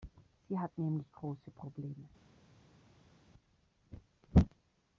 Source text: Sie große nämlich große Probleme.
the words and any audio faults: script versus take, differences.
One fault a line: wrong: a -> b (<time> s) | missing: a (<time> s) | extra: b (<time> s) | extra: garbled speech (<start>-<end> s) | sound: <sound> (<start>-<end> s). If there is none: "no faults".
wrong: große -> hat (0.6 s)